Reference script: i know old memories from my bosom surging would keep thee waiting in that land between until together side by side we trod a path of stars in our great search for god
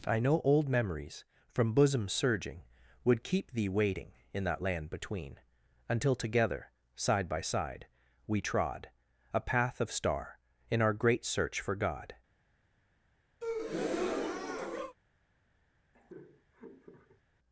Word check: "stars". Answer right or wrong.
wrong